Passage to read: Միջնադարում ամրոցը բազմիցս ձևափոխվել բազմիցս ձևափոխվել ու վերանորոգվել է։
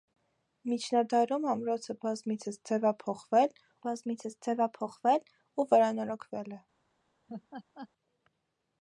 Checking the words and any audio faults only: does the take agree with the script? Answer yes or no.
no